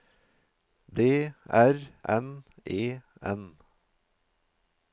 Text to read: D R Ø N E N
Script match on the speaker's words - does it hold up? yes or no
no